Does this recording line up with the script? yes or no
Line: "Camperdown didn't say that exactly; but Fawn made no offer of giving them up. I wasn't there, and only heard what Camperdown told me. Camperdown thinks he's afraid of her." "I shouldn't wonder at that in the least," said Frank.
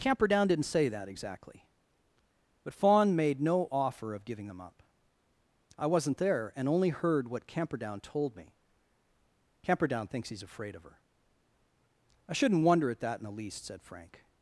yes